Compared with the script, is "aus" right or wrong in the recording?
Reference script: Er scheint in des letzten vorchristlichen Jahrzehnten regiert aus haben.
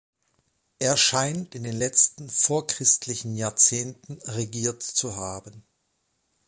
wrong